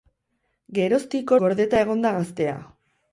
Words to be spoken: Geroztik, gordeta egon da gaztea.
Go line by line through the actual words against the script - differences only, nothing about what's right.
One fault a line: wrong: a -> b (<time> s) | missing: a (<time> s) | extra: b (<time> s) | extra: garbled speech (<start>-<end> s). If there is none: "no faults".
no faults